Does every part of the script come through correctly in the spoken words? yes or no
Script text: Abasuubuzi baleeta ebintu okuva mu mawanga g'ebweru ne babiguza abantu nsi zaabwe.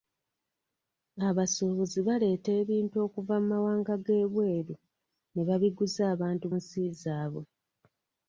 yes